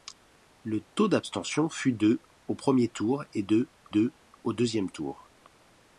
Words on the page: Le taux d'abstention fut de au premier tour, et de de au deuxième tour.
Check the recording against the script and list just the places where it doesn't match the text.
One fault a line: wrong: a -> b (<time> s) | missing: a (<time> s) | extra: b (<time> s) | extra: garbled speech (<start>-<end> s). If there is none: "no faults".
no faults